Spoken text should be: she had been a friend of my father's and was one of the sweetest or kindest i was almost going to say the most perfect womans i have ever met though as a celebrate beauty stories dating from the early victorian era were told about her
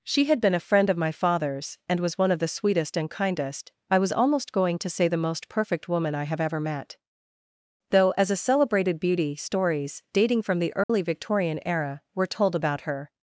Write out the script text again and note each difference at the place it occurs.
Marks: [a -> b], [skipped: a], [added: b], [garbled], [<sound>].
she had been a friend of my father's and was one of the sweetest [or -> and] kindest i was almost going to say the most perfect [womans -> woman] i have ever met though as a [celebrate -> celebrated] beauty stories dating from the early [dropout] victorian era were told about her